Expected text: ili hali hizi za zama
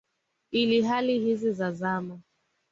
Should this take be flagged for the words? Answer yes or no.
no